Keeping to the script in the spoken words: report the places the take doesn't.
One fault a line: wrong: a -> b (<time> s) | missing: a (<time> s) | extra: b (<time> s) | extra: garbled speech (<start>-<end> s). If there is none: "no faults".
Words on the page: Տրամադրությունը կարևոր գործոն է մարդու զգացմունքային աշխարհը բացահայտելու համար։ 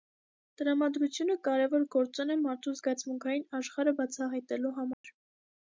no faults